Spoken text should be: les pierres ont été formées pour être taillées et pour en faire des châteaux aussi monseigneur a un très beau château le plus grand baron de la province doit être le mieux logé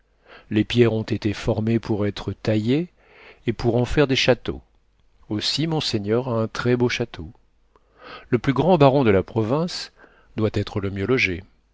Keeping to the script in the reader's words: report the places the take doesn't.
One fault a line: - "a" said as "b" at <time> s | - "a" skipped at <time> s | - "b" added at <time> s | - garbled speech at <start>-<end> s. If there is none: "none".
none